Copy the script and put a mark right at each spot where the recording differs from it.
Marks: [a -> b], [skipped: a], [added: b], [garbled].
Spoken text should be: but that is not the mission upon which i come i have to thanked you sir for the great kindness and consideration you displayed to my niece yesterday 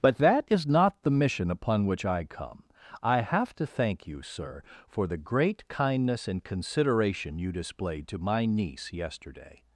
but that is not the mission upon which i come i have to [thanked -> thank] you sir for the great kindness and consideration you displayed to my niece yesterday